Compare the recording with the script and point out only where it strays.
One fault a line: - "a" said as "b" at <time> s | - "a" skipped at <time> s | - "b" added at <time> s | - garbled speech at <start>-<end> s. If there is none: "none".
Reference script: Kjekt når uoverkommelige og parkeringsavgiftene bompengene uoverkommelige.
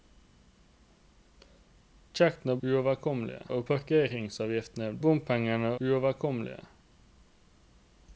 none